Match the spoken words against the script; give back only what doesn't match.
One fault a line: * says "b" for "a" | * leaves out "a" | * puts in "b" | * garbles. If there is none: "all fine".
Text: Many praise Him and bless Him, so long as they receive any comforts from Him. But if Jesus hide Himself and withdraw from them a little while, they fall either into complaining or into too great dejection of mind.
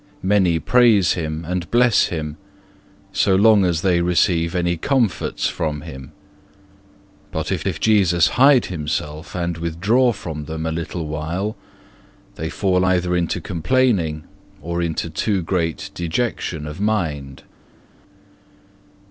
* puts in "if"